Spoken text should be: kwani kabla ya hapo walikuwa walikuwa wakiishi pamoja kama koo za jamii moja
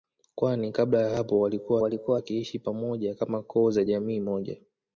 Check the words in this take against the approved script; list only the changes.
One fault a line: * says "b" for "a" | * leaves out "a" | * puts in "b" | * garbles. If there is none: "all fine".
all fine